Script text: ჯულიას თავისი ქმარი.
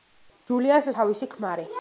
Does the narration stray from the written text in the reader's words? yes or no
no